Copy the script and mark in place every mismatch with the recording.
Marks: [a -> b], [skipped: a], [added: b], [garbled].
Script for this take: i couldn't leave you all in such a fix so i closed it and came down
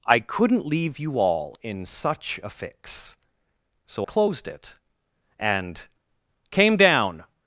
i couldn't leave you all in such a fix so [skipped: i] closed it and came down